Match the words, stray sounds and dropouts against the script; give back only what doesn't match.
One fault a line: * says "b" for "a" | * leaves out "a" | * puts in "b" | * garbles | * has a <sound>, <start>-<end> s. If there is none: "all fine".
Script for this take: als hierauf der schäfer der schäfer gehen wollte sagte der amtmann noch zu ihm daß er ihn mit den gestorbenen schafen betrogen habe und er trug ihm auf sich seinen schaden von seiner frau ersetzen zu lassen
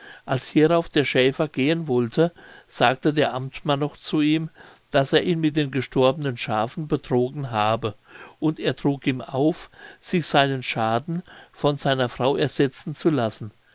* leaves out "der schäfer"